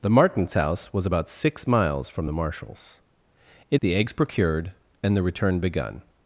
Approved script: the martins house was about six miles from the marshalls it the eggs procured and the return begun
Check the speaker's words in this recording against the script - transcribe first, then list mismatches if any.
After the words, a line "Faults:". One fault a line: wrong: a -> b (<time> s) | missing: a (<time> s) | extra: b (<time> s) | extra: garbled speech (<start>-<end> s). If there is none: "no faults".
the martins house was about six miles from the marshalls it the eggs procured and the return begun
Faults:
no faults